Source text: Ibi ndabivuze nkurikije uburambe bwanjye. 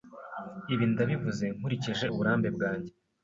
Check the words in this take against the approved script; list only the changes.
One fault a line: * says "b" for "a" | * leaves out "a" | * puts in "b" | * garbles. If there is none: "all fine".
all fine